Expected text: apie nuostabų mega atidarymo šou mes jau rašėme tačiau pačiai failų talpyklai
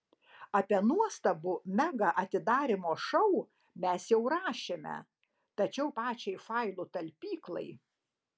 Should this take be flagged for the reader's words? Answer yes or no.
no